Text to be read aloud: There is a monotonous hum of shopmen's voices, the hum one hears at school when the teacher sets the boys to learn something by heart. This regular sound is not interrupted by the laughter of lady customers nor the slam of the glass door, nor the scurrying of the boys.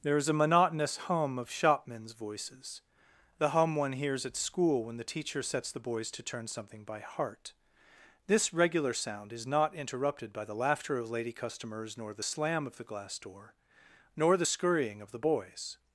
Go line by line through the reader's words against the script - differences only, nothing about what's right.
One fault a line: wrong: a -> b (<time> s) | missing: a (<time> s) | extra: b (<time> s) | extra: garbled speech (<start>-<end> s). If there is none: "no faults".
wrong: learn -> turn (6.2 s)